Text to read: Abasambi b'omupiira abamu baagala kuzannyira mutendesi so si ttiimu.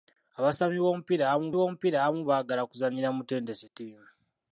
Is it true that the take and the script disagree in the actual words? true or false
true